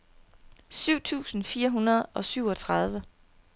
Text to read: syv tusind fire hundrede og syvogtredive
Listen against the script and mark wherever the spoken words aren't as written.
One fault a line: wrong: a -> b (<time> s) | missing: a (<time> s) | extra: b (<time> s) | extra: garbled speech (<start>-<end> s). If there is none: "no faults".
no faults